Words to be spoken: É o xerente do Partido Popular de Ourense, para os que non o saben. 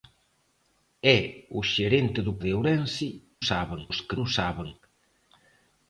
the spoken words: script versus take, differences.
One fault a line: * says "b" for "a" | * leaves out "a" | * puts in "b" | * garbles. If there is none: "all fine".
* leaves out "Partido Popular"
* says "saben" for "para"
* leaves out "non"